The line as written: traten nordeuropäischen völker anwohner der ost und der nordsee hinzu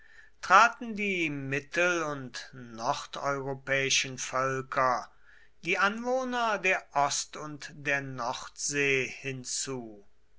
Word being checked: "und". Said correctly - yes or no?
yes